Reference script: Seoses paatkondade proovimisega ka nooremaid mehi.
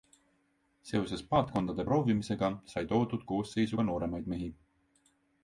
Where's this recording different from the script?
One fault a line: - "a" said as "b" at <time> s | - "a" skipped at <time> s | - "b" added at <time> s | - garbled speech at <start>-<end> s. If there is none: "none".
- "sai toodud koosseisu" added at 2.7 s